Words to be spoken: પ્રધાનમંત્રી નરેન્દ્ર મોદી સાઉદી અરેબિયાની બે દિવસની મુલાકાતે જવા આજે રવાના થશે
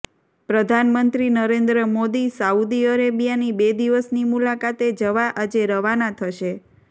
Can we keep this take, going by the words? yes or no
yes